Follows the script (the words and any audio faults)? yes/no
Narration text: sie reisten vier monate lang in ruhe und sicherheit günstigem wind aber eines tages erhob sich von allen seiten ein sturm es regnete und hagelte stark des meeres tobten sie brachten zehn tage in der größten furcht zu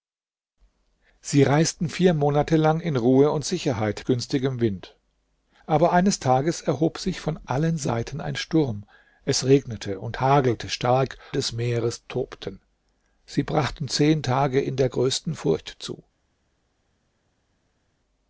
yes